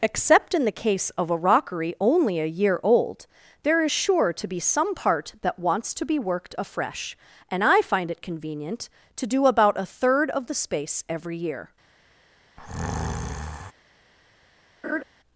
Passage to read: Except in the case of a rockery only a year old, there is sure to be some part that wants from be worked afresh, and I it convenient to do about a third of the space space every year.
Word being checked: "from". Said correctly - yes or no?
no